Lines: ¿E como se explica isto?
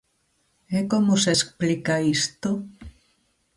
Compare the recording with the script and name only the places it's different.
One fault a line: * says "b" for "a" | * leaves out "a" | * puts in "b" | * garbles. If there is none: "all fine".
all fine